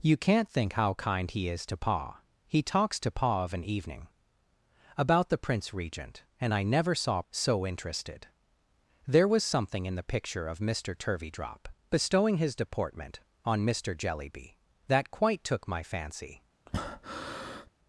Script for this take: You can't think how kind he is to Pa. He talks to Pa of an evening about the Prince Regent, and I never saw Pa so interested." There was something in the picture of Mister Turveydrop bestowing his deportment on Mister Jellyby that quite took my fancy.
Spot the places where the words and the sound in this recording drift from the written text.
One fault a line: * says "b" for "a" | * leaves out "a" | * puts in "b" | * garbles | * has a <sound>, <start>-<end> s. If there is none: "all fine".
* leaves out "Pa"
* has a breath, 16.7-17.7 s